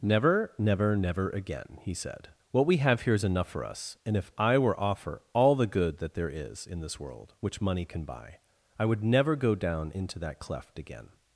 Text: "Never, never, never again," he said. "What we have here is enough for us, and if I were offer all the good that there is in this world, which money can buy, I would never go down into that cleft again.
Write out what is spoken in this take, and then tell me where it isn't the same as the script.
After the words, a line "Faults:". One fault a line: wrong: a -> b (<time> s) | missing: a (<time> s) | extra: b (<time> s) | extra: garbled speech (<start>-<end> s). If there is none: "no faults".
"Never, never, never again," he said. "What we have here is enough for us, and if I were offer all the good that there is in this world, which money can buy, I would never go down into that cleft again.
Faults:
no faults